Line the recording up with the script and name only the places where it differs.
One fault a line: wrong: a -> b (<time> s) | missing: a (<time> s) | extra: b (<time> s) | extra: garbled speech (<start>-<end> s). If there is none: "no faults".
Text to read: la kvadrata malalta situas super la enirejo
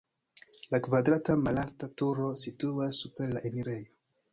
extra: turo (2.0 s)